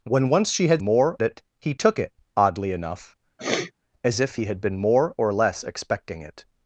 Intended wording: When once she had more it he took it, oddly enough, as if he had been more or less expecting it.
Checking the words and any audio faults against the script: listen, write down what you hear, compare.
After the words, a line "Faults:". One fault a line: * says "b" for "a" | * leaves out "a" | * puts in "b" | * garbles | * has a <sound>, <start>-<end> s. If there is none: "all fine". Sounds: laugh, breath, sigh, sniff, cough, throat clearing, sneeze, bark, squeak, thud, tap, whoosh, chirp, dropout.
When once she had more it he took it, oddly enough, as if he had been more or less expecting it.
Faults:
* has a sniff, 3.4-3.7 s